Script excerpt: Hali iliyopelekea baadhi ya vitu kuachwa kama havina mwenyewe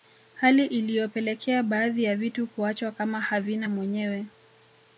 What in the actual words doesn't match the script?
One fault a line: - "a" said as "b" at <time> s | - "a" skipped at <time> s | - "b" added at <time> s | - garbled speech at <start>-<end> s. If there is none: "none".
none